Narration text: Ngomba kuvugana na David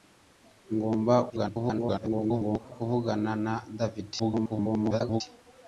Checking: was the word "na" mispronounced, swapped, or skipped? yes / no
no